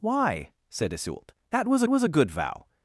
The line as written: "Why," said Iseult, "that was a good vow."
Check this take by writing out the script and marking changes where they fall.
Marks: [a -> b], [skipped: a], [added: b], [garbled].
"Why," said Iseult, "that was [added: was] a good vow."